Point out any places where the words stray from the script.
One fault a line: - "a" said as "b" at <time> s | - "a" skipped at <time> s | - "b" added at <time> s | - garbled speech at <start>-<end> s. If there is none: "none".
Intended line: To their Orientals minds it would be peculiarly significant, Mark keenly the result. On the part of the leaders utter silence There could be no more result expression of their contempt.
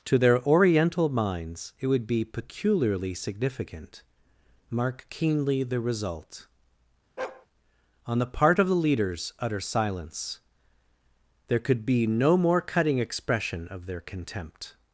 - "Orientals" said as "Oriental" at 0.4 s
- "result" said as "cutting" at 12.6 s